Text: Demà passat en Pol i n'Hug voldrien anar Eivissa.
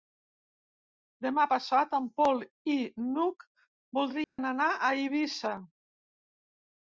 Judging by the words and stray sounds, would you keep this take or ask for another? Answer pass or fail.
fail